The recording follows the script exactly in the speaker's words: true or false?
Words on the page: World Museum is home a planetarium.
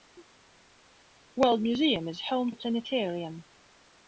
true